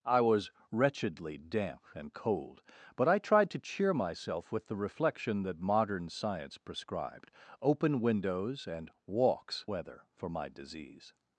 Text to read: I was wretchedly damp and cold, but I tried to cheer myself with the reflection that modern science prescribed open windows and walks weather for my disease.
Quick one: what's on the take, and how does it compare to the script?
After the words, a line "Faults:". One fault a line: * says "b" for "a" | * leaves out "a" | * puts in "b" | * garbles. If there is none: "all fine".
I was wretchedly damp and cold, but I tried to cheer myself with the reflection that modern science prescribed open windows and walks weather for my disease.
Faults:
all fine